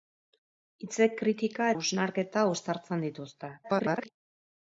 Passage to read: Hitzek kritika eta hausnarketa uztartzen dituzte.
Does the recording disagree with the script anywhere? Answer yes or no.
yes